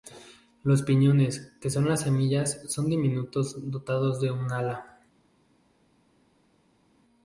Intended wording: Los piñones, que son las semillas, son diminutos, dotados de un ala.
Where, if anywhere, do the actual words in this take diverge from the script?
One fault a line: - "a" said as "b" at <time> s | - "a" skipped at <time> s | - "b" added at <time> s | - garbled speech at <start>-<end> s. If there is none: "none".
none